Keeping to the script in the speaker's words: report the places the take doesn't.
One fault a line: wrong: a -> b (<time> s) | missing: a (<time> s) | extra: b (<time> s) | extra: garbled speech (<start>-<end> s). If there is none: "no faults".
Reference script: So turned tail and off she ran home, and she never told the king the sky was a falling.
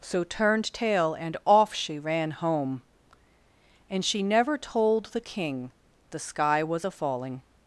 no faults